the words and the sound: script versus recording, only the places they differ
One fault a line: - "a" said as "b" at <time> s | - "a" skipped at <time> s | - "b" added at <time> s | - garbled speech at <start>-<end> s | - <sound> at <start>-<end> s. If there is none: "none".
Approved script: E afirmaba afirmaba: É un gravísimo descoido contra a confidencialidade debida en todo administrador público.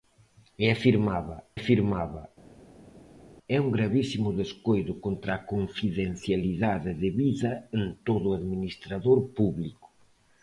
none